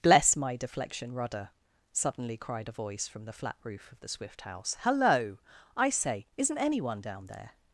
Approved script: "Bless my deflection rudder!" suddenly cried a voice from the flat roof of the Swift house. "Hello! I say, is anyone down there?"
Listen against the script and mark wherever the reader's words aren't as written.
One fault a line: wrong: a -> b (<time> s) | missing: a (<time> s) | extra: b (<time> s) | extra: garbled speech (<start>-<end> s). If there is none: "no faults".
wrong: is -> isn't (6.4 s)